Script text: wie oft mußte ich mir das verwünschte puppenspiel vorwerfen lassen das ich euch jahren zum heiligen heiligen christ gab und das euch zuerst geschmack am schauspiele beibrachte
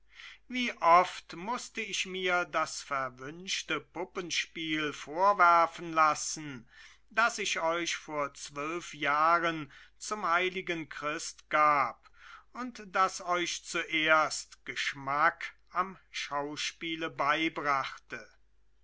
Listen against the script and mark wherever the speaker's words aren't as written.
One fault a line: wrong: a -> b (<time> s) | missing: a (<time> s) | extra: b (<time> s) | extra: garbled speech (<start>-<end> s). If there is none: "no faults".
extra: vor zwölf (8.0 s)
missing: heiligen (10.9 s)